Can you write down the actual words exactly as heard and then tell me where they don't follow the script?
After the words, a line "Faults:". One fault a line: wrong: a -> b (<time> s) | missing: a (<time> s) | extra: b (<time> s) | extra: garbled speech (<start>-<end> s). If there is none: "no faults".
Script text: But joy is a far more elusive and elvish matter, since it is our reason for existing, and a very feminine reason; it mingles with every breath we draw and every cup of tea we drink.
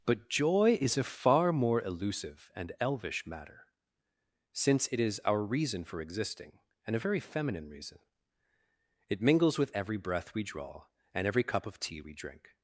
But joy is a far more elusive and elvish matter, since it is our reason for existing, and a very feminine reason; it mingles with every breath we draw and every cup of tea we drink.
Faults:
no faults